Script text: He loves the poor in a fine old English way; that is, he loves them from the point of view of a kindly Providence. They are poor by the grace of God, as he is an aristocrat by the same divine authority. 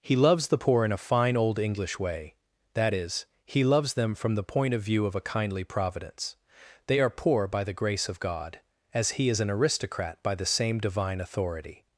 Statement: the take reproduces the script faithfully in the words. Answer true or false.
true